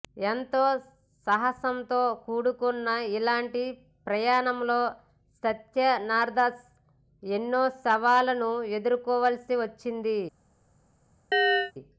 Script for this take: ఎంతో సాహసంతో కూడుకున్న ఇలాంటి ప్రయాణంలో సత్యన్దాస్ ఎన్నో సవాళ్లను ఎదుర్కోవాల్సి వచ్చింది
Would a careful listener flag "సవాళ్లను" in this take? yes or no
no